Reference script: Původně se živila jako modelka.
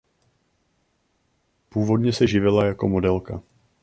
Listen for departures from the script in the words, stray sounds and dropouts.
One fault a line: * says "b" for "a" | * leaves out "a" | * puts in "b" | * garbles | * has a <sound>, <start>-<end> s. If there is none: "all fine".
all fine